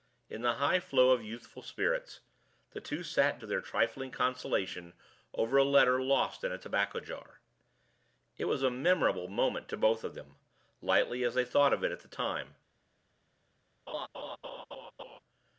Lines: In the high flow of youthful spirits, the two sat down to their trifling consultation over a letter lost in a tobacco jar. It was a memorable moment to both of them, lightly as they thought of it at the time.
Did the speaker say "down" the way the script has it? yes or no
no